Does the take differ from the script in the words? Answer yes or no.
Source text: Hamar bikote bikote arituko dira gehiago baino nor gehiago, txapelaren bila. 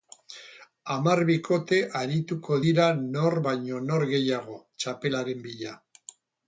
yes